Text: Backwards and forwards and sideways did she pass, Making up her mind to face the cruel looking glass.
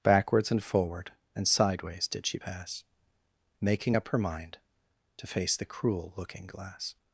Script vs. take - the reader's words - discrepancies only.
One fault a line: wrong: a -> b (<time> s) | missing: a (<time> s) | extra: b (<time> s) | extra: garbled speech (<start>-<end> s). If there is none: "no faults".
wrong: forwards -> forward (0.6 s)